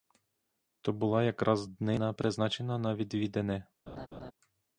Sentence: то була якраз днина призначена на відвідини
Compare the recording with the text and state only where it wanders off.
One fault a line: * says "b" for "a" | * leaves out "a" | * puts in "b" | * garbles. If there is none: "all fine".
all fine